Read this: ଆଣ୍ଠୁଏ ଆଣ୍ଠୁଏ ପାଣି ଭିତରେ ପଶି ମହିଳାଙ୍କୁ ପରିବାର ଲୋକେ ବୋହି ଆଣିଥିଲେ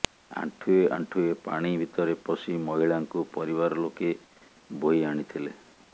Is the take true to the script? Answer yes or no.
yes